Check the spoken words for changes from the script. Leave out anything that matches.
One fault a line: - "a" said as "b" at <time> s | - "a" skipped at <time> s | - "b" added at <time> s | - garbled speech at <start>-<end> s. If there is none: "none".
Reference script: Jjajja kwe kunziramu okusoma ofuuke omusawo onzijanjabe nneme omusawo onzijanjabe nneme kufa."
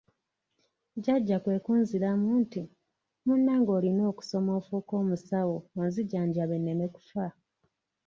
- "okusoma ofuuke omusawo onzijanjabe nneme" said as "nti Munnange olina okusoma ofuuke" at 2.4 s